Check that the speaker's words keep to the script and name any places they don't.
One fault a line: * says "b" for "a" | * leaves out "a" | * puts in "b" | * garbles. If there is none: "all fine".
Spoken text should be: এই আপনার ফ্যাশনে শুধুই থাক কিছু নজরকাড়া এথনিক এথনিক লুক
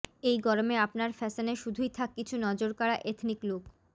* puts in "গরমে"
* leaves out "এথনিক"